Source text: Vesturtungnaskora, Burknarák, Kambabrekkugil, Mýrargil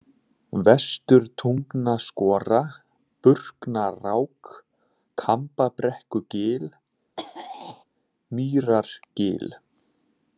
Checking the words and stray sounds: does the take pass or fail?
fail